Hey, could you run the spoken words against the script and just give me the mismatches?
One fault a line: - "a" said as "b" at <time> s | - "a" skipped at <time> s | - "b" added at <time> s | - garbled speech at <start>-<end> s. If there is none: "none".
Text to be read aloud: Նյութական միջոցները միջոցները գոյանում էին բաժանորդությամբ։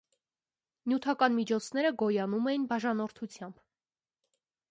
- "միջոցները" skipped at 1.9 s